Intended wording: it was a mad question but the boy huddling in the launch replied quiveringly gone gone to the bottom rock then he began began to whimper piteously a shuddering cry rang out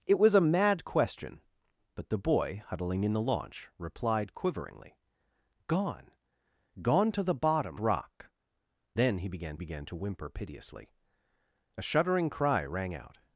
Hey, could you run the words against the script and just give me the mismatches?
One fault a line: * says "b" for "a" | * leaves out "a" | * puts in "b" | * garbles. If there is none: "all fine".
all fine